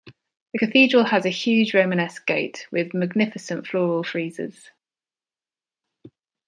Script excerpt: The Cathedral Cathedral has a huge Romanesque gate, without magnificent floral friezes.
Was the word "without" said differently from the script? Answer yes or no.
yes